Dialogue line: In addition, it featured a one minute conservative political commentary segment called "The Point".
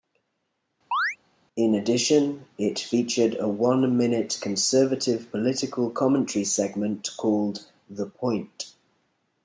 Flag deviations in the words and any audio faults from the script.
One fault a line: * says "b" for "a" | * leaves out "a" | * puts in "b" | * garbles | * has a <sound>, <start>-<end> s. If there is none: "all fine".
* has a chirp, 0.9-1.2 s